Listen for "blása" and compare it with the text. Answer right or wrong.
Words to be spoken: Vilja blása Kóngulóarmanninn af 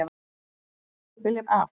wrong